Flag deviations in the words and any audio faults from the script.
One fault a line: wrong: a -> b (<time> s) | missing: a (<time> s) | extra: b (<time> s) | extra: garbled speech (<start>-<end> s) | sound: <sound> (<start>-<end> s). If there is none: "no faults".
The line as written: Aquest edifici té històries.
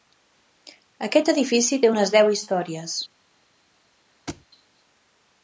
extra: unes deu (1.9 s)
sound: thud (4.3-4.5 s)